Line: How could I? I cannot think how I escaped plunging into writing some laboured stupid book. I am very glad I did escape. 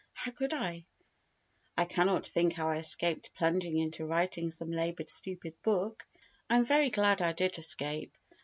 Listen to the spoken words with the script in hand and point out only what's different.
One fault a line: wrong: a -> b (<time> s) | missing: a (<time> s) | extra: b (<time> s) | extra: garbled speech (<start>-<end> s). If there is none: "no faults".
no faults